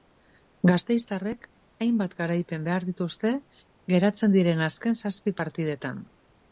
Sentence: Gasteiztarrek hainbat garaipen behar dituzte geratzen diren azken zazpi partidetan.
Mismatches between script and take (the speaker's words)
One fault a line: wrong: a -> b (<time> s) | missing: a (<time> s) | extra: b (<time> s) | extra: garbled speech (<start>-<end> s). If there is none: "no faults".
no faults